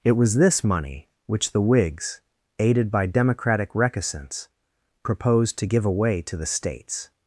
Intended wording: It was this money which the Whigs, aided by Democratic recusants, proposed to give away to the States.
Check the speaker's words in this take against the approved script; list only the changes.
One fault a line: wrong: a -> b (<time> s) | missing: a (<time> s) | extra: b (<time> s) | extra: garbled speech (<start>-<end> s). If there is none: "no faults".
no faults